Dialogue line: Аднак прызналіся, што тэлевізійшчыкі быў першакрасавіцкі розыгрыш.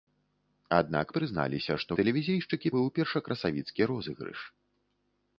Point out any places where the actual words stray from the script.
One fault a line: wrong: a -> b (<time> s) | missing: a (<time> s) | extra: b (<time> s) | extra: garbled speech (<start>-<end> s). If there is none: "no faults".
no faults